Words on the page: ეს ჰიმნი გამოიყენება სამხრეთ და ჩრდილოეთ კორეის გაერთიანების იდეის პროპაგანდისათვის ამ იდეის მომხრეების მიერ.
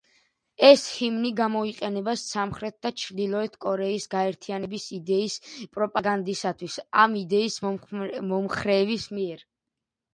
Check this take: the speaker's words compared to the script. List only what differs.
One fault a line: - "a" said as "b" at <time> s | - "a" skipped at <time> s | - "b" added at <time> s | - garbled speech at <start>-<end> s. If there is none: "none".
none